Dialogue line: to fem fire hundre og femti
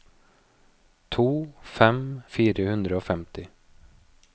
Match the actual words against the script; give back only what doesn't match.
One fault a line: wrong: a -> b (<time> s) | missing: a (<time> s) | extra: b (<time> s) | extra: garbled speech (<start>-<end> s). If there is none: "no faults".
no faults